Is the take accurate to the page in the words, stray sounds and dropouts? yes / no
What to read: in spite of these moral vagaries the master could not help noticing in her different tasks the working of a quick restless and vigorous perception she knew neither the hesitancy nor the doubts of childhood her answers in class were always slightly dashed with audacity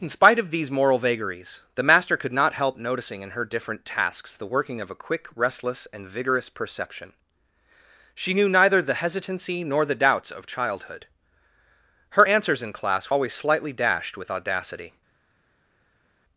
no